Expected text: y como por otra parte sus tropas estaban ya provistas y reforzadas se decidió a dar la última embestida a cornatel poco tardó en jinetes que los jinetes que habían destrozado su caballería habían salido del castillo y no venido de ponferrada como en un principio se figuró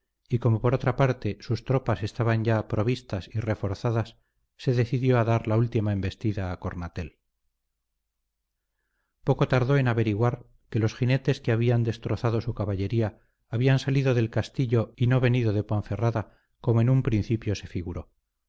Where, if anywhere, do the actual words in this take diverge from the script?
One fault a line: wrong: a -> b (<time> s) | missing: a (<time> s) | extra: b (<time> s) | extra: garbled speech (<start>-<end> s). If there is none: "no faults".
wrong: jinetes -> averiguar (9.9 s)